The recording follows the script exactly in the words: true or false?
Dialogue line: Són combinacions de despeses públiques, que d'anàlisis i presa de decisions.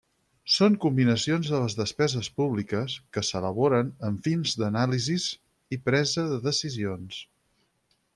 false